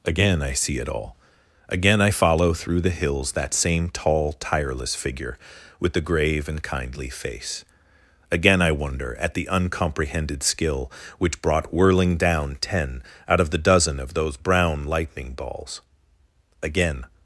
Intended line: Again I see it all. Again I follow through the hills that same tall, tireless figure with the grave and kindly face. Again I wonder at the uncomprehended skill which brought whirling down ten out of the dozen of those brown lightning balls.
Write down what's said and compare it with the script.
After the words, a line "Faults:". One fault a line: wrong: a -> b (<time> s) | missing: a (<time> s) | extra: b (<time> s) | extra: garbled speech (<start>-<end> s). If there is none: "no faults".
Again I see it all. Again I follow through the hills that same tall, tireless figure with the grave and kindly face. Again I wonder at the uncomprehended skill which brought whirling down ten out of the dozen of those brown lightning balls. Again
Faults:
extra: Again (16.6 s)